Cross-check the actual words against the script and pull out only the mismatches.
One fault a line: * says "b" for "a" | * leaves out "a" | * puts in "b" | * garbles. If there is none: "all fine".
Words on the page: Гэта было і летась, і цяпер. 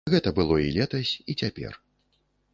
all fine